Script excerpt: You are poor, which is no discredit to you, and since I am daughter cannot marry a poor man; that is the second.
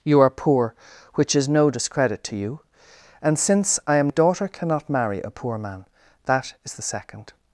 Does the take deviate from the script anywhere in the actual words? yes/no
no